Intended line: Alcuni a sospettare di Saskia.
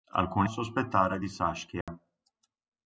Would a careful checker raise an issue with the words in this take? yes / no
no